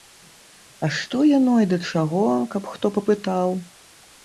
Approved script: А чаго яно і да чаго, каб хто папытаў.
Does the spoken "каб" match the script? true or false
true